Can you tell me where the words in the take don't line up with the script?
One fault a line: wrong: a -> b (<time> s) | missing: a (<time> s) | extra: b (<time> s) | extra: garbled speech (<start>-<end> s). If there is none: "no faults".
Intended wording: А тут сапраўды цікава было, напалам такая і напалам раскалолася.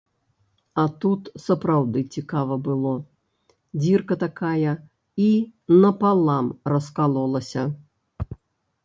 wrong: напалам -> дзірка (3.8 s)